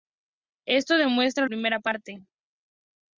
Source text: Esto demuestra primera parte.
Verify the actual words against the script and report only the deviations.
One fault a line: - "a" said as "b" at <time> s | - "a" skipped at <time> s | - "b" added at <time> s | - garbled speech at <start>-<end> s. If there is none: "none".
none